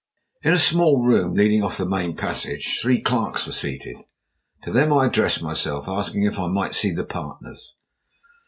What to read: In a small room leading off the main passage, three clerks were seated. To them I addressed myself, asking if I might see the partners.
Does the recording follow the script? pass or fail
pass